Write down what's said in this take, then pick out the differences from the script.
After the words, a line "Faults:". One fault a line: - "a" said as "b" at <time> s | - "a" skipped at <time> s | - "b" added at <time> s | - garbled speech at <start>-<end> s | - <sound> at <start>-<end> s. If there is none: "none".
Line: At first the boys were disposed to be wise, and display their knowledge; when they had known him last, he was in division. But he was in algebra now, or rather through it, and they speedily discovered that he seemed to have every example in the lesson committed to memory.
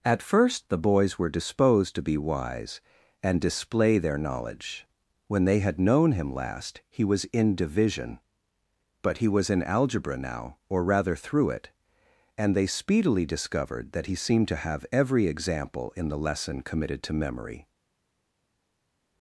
At first the boys were disposed to be wise, and display their knowledge; when they had known him last, he was in division. But he was in algebra now, or rather through it, and they speedily discovered that he seemed to have every example in the lesson committed to memory.
Faults:
none